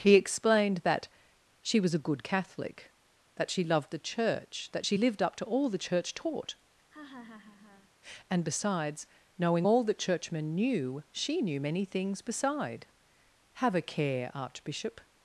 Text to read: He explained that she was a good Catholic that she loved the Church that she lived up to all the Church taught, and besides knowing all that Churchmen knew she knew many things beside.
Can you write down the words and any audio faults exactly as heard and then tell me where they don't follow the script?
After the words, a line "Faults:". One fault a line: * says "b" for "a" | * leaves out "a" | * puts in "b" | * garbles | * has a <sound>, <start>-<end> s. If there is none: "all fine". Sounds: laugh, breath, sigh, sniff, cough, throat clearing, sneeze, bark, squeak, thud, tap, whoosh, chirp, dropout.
He explained that she was a good Catholic that she loved the Church that she lived up to all the Church taught, and besides knowing all that Churchmen knew she knew many things beside. Have a care, Archbishop
Faults:
* has a laugh, 6.9-7.9 s
* puts in "Have a care Archbishop"